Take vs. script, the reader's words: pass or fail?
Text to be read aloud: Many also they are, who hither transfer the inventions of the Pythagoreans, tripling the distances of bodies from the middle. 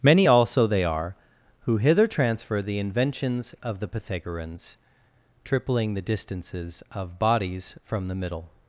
pass